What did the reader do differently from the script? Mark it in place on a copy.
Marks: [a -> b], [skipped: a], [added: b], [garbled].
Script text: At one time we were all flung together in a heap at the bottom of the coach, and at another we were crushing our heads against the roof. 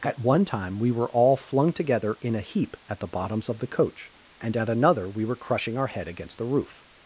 At one time we were all flung together in a heap at the [bottom -> bottoms] of the coach, and at another we were crushing our [heads -> head] against the roof.